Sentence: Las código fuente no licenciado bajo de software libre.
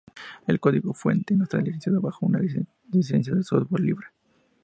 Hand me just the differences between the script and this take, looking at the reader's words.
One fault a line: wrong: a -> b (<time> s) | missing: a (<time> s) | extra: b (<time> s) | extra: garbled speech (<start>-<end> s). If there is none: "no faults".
wrong: Las -> El (0.5 s)
extra: está (1.4 s)
extra: una licencia (2.3 s)